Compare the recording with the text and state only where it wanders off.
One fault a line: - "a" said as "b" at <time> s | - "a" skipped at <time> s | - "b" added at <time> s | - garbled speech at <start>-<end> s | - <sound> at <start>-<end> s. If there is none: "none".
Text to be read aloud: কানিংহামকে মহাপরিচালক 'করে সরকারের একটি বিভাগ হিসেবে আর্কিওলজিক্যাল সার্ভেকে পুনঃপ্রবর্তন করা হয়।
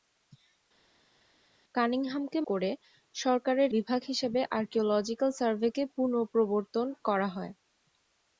- "মহাপরিচালক" skipped at 2.4 s
- "একটি" skipped at 3.7 s